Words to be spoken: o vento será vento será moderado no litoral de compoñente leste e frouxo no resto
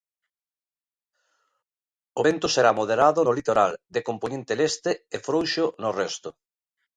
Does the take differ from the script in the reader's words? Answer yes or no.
yes